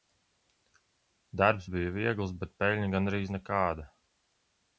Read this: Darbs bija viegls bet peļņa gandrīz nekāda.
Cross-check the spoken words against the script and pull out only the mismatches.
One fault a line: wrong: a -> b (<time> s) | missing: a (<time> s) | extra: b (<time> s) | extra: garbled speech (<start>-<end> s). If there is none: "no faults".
no faults